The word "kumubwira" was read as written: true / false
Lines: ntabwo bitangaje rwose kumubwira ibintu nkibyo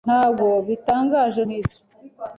false